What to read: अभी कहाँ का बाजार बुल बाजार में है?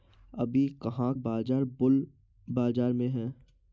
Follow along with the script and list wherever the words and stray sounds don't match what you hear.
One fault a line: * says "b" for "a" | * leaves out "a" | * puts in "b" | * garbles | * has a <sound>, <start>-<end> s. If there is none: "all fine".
* leaves out "का"